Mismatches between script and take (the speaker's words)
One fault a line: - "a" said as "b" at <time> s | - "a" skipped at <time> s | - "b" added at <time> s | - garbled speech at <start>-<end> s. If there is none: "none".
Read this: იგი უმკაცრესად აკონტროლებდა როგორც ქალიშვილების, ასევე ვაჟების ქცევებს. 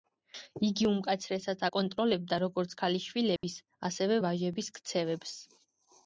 none